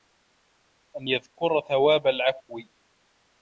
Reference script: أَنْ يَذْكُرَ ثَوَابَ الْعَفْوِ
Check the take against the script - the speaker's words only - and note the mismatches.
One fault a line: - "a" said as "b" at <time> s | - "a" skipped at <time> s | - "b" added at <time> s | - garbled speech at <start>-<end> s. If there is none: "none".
none